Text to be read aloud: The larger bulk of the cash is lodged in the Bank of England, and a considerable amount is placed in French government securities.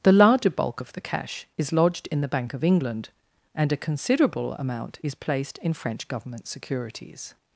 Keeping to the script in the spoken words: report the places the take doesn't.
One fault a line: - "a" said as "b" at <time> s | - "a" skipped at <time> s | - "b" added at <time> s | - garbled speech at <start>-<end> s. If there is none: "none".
none